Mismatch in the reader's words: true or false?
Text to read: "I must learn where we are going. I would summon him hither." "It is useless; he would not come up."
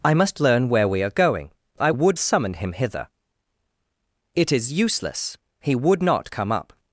false